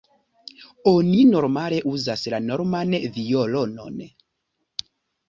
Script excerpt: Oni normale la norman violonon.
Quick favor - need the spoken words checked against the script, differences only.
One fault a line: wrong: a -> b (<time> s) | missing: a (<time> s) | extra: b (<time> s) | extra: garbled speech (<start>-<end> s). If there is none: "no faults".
extra: uzas (1.9 s)